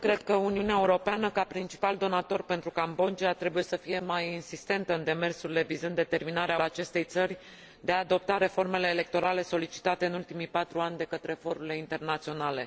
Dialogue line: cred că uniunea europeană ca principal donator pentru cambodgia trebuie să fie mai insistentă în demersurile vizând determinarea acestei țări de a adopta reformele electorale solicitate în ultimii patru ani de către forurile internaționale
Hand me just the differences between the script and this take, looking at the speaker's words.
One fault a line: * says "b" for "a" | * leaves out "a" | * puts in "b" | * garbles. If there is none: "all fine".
all fine